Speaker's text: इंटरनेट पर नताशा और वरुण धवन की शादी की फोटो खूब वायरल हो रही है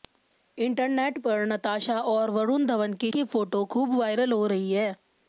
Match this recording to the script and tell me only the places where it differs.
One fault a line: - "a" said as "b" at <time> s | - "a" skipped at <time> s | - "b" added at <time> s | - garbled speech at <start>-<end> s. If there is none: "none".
- "शादी" skipped at 3.1 s